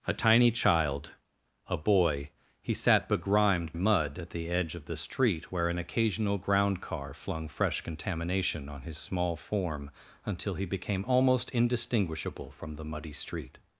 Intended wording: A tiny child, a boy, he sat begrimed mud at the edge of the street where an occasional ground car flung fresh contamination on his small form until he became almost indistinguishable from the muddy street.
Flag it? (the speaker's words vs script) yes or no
no